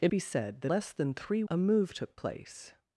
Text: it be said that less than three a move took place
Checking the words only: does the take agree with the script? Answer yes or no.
yes